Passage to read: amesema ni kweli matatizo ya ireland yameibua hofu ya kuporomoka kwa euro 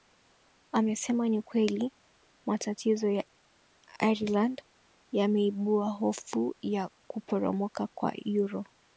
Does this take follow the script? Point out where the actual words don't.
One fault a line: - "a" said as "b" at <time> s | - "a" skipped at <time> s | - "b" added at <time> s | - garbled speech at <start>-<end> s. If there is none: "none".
none